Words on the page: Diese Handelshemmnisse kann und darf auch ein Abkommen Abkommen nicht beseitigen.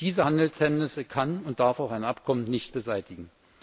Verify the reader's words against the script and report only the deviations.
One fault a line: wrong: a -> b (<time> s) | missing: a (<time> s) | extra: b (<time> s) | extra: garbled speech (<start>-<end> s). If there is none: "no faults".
missing: Abkommen (2.4 s)